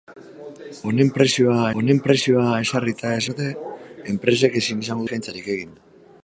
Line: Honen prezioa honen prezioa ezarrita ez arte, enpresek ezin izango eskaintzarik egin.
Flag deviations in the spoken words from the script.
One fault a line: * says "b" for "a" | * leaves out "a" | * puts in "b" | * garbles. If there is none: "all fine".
all fine